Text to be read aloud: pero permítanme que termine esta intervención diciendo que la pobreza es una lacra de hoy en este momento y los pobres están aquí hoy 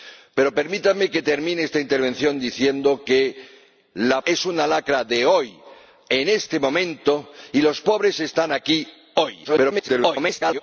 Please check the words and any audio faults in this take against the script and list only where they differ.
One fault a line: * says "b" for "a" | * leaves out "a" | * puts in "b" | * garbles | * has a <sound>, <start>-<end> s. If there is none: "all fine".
* leaves out "pobreza"
* garbles